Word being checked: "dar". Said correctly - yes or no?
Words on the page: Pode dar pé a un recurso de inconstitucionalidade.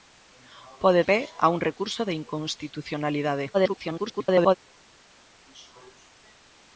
no